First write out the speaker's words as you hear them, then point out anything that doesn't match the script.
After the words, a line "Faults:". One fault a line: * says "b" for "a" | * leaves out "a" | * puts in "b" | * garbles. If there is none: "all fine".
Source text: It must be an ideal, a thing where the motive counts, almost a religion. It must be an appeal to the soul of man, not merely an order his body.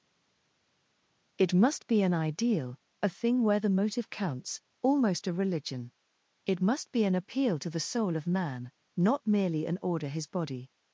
It must be an ideal, a thing where the motive counts, almost a religion. It must be an appeal to the soul of man, not merely an order his body.
Faults:
all fine